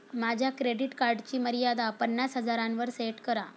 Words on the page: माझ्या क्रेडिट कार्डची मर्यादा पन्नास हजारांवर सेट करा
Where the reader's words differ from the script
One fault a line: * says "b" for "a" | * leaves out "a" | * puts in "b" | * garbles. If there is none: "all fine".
all fine